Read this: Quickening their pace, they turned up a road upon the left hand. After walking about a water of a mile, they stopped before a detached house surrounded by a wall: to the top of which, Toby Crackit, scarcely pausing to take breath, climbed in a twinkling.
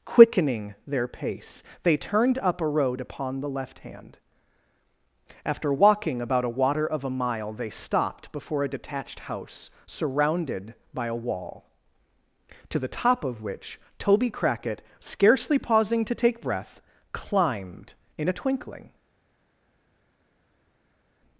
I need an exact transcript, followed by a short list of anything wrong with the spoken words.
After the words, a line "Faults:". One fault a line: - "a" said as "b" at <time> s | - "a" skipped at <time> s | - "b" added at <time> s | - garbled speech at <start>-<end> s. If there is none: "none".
Quickening their pace, they turned up a road upon the left hand. After walking about a water of a mile, they stopped before a detached house surrounded by a wall: to the top of which, Toby Crackit, scarcely pausing to take breath, climbed in a twinkling.
Faults:
none